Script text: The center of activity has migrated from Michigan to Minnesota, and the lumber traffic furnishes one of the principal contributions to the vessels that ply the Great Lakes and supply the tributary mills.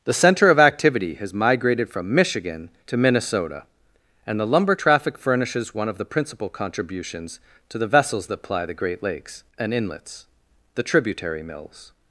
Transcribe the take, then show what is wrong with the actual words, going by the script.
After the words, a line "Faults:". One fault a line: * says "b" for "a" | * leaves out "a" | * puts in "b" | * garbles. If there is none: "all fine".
The center of activity has migrated from Michigan to Minnesota, and the lumber traffic furnishes one of the principal contributions to the vessels that ply the Great Lakes and inlets the tributary mills.
Faults:
* says "inlets" for "supply"